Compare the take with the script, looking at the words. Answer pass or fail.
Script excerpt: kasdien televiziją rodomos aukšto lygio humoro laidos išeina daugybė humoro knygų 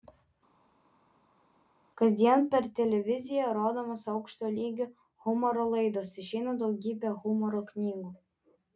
fail